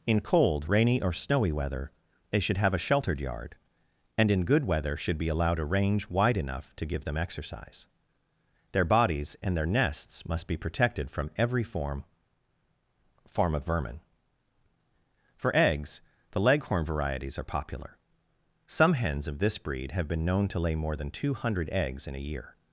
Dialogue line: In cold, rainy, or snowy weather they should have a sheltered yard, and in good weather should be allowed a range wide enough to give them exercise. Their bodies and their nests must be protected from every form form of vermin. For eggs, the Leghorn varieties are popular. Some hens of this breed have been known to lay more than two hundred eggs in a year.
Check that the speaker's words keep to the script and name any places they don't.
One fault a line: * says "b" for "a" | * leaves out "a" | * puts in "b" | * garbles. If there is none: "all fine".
all fine